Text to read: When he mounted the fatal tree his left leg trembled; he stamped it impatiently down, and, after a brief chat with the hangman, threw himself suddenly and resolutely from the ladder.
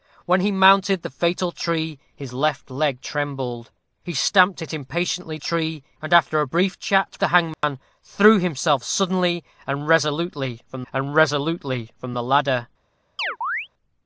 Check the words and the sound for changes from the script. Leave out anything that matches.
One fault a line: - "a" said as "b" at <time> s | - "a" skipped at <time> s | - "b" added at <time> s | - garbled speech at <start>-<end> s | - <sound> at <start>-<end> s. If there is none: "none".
- "down" said as "tree" at 5.4 s
- "with" skipped at 7.2 s
- dropout at 7.5-7.6 s
- "and resolutely from" added at 10.9 s
- chirp at 13.2-13.7 s